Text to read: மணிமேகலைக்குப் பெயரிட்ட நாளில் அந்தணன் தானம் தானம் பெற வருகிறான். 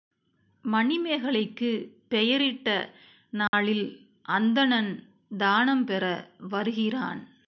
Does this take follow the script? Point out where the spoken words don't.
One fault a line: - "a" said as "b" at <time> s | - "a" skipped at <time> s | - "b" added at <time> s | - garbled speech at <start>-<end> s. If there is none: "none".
- "தானம்" skipped at 5.8 s